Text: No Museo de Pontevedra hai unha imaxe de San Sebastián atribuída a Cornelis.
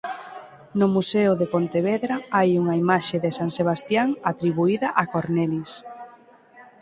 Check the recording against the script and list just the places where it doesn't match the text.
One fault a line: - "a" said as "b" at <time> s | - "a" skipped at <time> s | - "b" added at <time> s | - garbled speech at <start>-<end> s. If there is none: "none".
none